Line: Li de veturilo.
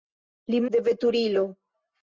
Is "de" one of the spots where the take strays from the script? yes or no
no